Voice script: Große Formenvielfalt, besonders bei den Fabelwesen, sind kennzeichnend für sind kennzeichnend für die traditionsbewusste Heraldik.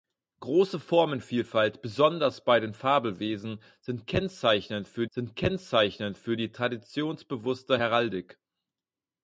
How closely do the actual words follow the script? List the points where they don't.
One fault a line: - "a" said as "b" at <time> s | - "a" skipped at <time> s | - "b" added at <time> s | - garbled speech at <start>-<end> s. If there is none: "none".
none